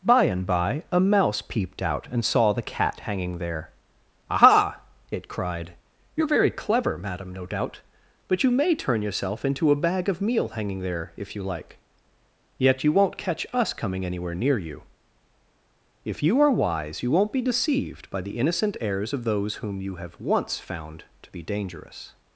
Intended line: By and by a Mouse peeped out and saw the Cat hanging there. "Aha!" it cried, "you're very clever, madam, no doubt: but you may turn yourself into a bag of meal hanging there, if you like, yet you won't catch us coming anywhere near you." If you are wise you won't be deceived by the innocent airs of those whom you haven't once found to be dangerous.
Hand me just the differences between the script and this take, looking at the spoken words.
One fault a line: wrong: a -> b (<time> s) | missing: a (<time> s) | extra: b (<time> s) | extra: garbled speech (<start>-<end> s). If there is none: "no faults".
wrong: haven't -> have (20.0 s)